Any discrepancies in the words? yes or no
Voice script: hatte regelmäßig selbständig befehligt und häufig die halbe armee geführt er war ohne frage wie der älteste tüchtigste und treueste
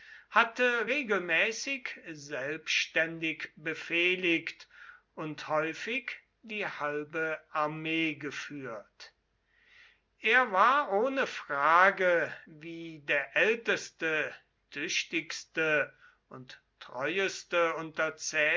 no